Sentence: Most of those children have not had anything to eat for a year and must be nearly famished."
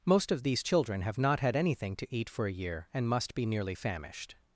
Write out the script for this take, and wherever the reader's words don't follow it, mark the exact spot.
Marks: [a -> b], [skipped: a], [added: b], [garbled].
Most of [those -> these] children have not had anything to eat for a year and must be nearly famished."